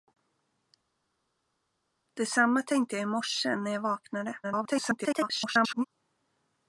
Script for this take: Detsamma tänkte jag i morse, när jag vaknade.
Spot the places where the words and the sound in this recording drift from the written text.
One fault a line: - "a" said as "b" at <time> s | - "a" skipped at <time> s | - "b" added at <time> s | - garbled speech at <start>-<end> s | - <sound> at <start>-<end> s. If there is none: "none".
- garbled speech at 4.4-5.8 s